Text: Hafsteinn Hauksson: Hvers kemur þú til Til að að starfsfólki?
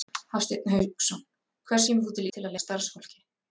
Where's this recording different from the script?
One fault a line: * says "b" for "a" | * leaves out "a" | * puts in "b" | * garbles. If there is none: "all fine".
all fine